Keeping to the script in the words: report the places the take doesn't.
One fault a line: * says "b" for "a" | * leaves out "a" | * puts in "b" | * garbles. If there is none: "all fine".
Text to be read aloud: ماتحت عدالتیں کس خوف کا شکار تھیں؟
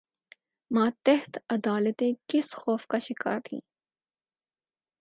all fine